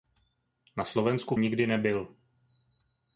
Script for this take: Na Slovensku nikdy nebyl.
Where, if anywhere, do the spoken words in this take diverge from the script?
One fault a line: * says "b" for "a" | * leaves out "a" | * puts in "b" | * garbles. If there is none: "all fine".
all fine